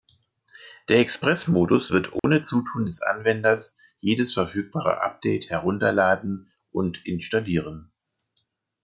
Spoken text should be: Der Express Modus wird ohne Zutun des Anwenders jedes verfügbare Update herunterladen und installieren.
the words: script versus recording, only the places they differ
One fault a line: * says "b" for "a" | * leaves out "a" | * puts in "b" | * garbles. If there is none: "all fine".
all fine